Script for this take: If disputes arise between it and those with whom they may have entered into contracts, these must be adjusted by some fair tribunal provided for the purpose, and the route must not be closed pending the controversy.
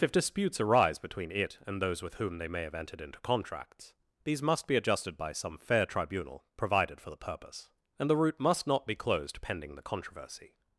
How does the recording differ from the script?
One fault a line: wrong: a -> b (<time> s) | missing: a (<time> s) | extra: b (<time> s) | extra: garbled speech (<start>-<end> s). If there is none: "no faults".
no faults